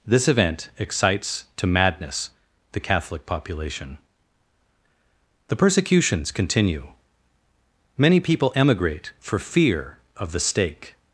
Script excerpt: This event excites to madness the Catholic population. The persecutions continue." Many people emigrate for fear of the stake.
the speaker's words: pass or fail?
pass